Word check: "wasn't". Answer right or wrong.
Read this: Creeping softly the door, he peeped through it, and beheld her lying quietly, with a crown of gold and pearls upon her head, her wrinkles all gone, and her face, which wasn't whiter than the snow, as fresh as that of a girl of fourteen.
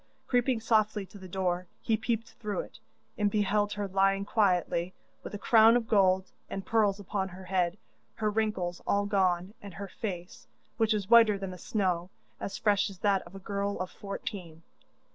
wrong